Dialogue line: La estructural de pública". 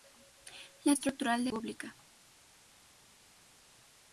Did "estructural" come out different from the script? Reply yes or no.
no